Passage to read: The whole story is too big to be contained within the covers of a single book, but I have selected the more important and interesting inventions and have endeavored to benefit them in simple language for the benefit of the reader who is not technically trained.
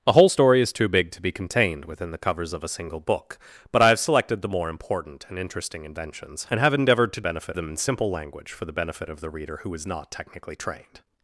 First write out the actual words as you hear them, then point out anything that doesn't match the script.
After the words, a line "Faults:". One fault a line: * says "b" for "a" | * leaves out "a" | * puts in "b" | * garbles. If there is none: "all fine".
The whole story is too big to be contained within the covers of a single book, but I have selected the more important and interesting inventions and have endeavored to benefit them in simple language for the benefit of the reader who is not technically trained.
Faults:
all fine